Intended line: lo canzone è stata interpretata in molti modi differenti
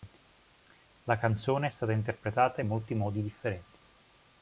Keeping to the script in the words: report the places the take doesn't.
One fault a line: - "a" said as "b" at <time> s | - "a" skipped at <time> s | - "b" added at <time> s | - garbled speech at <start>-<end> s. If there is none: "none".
- "lo" said as "la" at 1.0 s